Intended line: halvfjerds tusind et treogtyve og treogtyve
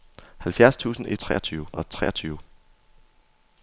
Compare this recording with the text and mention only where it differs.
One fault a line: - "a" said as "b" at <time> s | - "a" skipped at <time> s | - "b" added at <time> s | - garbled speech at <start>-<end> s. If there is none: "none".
none